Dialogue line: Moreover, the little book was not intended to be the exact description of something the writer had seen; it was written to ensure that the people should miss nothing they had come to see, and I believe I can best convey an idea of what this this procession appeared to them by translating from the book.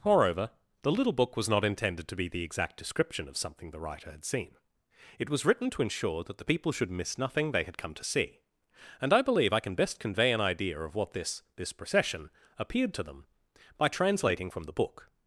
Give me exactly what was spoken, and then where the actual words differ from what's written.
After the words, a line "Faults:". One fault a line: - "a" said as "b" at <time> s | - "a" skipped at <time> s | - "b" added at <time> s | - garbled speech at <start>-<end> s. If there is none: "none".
Moreover, the little book was not intended to be the exact description of something the writer had seen; it was written to ensure that the people should miss nothing they had come to see, and I believe I can best convey an idea of what this this procession appeared to them by translating from the book.
Faults:
none